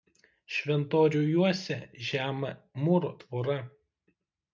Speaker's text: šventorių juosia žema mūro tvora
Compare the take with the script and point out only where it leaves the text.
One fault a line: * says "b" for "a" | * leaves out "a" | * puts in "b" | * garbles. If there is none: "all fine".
all fine